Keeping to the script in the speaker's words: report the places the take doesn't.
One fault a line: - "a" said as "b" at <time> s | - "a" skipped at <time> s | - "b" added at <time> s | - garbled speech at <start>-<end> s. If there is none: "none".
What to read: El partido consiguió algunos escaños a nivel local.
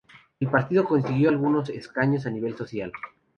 none